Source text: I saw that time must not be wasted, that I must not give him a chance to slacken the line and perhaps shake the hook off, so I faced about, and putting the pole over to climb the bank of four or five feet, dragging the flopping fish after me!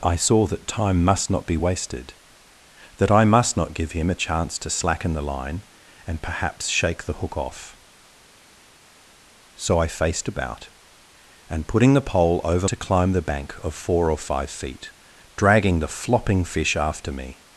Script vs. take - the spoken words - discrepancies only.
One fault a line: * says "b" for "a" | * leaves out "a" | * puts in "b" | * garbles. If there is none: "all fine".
all fine